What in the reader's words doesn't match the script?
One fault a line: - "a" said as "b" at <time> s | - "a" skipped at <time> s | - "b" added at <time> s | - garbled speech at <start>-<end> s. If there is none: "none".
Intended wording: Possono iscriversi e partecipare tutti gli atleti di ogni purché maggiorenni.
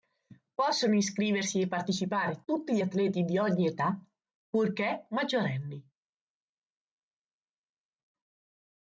- "età" added at 3.7 s